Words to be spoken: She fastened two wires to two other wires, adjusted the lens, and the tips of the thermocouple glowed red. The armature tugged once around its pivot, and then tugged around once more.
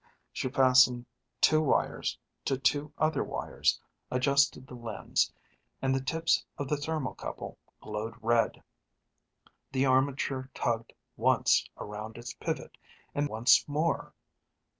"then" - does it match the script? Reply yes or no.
no